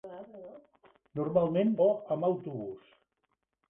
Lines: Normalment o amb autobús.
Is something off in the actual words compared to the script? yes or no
no